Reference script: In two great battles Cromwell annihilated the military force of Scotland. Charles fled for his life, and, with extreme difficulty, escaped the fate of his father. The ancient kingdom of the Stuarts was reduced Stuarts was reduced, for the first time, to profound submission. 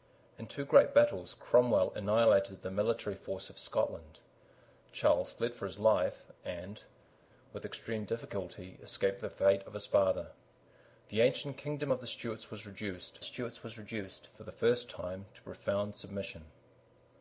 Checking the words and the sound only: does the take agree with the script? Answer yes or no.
yes